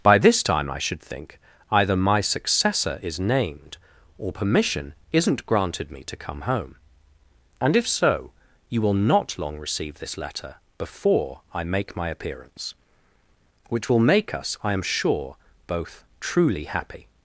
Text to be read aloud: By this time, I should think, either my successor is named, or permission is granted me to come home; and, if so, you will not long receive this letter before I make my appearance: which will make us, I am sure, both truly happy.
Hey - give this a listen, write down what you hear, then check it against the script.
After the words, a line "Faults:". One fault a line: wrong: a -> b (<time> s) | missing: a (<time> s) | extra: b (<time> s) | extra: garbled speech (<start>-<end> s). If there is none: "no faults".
By this time, I should think, either my successor is named, or permission isn't granted me to come home; and, if so, you will not long receive this letter before I make my appearance: which will make us, I am sure, both truly happy.
Faults:
wrong: is -> isn't (5.1 s)